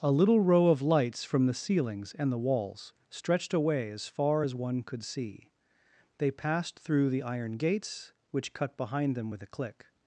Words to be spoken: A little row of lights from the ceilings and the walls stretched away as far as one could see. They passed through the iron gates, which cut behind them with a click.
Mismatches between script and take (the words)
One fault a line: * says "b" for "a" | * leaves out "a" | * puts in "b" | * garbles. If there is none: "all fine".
all fine